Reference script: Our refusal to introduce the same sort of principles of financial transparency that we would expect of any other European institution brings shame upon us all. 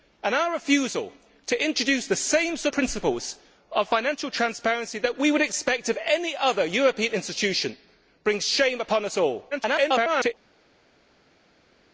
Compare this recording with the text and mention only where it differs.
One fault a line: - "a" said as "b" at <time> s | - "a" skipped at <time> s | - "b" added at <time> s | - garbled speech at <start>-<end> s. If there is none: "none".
- "of" skipped at 2.7 s
- garbled speech at 9.5-10.3 s